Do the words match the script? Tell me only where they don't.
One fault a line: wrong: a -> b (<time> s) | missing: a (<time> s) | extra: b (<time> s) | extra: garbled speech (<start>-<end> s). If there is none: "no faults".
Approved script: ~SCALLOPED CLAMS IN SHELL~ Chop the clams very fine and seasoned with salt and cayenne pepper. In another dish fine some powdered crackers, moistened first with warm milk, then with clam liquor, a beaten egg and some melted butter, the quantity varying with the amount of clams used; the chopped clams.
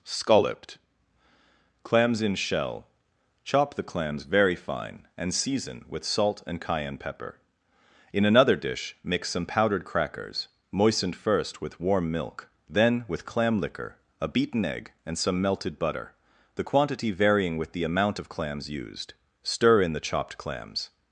wrong: seasoned -> season (5.3 s)
wrong: fine -> mix (9.0 s)
extra: stir in (19.4 s)